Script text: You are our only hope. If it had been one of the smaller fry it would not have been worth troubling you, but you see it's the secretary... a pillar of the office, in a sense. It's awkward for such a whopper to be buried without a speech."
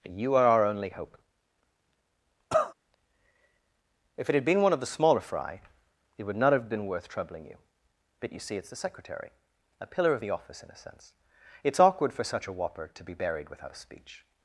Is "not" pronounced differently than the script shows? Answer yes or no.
no